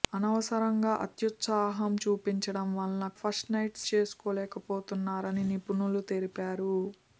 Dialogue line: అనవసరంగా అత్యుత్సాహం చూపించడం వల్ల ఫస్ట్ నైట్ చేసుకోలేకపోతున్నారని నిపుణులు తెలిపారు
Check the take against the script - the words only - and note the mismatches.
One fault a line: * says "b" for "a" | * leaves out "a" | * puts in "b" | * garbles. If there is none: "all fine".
all fine